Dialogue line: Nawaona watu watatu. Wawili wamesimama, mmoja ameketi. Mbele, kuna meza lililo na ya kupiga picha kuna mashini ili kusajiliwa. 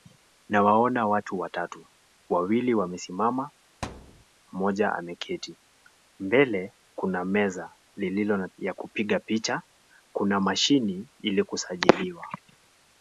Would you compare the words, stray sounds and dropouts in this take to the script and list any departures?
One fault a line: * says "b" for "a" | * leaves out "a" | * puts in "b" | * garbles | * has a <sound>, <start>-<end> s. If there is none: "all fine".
* has a thud, 3.8-4.2 s